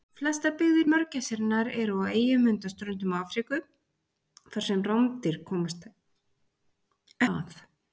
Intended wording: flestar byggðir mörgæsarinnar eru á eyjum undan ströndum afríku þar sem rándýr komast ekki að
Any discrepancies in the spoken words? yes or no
yes